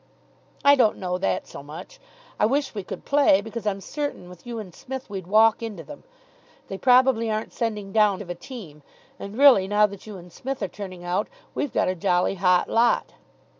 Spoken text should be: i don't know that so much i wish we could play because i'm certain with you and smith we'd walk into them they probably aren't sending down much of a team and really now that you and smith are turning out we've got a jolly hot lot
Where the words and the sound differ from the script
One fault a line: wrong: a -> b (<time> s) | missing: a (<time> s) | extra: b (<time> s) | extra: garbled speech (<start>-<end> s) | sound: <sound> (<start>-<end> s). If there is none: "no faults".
missing: much (8.2 s)